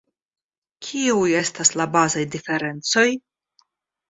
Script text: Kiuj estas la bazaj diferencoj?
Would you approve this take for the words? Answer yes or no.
yes